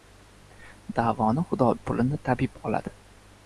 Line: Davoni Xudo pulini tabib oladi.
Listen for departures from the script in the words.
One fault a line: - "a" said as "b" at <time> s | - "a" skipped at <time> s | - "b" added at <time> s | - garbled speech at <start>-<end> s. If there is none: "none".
none